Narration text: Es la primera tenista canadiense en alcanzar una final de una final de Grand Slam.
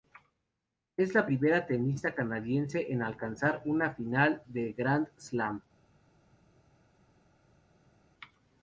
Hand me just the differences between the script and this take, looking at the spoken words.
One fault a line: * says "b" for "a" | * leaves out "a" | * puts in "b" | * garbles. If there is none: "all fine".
* leaves out "una final de"